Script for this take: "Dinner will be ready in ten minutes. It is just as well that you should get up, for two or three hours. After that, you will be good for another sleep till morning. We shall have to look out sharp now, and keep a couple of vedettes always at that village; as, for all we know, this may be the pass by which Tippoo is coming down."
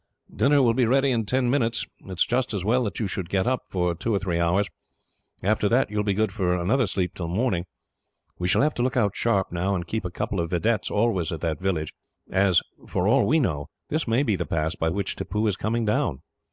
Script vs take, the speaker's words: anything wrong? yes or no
no